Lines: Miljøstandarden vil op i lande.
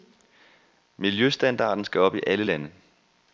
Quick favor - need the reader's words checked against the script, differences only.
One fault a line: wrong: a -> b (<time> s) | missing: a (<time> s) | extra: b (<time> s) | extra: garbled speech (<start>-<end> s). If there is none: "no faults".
wrong: vil -> skal (1.9 s)
extra: alle (2.3 s)